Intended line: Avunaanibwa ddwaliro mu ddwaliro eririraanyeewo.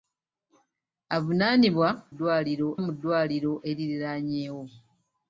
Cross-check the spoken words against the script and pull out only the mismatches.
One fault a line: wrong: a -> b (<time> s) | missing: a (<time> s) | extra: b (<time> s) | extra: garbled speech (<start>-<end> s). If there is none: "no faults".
no faults